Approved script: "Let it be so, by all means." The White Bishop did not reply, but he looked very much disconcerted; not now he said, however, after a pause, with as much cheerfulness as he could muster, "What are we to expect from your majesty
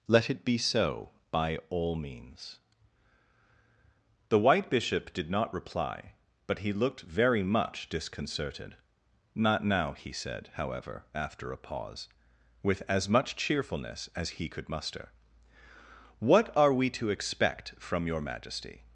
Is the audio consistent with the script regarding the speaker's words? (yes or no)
yes